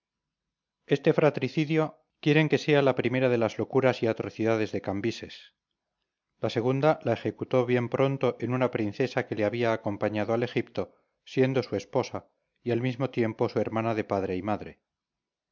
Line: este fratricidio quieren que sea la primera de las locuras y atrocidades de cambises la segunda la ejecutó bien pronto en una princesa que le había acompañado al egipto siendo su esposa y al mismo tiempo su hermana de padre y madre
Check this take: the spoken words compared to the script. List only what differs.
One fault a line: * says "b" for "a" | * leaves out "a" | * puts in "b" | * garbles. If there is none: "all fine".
all fine